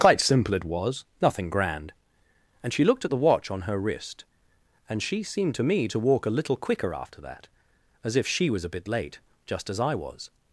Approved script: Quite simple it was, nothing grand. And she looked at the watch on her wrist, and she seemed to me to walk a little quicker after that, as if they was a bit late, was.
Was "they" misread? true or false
true